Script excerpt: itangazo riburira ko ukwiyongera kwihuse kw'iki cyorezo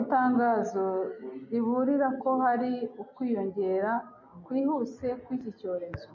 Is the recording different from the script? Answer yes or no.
yes